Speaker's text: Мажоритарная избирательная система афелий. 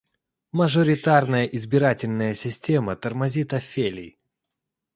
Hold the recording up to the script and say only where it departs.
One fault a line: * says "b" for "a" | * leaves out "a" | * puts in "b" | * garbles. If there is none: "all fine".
* puts in "тормозит"